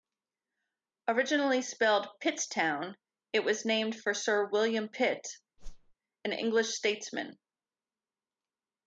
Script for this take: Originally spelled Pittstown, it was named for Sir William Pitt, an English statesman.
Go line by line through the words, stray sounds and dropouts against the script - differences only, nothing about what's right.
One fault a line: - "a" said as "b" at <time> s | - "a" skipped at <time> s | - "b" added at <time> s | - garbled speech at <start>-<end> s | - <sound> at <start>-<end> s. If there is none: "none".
- whoosh at 5.6-5.9 s